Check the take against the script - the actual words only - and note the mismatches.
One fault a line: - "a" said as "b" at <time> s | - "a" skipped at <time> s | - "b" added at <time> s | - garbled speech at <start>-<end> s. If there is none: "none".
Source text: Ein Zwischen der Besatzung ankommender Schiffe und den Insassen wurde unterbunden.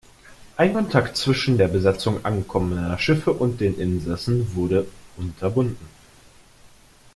- "Kontakt" added at 0.7 s